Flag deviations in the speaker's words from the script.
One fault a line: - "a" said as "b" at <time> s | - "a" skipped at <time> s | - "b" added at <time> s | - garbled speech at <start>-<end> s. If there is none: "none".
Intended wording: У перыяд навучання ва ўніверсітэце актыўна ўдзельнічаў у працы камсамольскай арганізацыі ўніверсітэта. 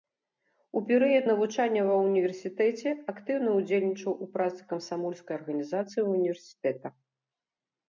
none